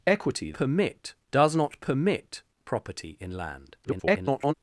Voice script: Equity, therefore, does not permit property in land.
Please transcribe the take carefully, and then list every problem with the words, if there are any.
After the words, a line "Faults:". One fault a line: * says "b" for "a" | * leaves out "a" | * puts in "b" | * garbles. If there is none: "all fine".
Equity, permit, does not permit property in land. [garbled]
Faults:
* says "permit" for "therefore"
* garbles